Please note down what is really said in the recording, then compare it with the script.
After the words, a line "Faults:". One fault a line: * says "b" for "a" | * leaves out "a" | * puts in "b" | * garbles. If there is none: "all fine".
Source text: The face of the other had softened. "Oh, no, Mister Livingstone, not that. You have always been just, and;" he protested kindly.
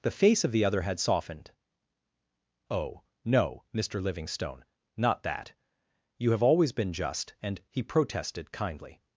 The face of the other had softened. "Oh, no, Mister Livingstone, not that. You have always been just, and;" he protested kindly.
Faults:
all fine